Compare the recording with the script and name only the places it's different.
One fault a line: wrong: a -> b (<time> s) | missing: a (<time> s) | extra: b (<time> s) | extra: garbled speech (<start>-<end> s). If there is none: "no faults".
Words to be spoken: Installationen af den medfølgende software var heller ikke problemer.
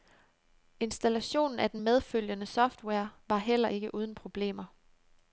extra: uden (3.9 s)